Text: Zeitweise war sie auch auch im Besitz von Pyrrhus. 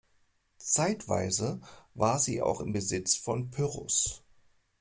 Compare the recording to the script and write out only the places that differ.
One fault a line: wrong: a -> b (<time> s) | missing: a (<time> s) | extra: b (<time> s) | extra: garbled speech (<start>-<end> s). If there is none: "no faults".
missing: auch (2.6 s)